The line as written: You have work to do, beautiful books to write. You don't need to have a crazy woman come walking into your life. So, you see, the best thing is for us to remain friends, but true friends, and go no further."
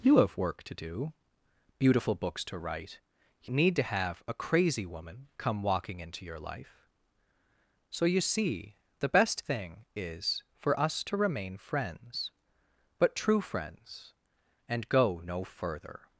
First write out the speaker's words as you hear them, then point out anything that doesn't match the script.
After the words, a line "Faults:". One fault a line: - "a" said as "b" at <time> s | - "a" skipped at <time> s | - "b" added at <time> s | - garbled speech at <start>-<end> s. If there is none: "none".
You have work to do, beautiful books to write. You need to have a crazy woman come walking into your life. So, you see, the best thing is for us to remain friends, but true friends, and go no further."
Faults:
- "don't" skipped at 3.5 s